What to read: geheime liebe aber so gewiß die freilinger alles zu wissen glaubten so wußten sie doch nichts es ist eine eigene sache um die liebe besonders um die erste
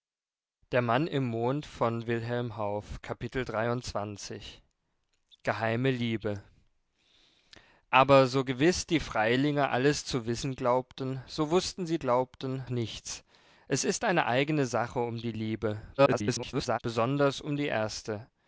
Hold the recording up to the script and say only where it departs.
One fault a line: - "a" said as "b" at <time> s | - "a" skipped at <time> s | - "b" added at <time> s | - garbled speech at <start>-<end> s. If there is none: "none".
- "doch" said as "glaubten" at 12.0 s
- garbled speech at 16.0-16.8 s